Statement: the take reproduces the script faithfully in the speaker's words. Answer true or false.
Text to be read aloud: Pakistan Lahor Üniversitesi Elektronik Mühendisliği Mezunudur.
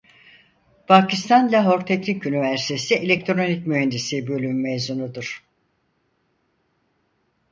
false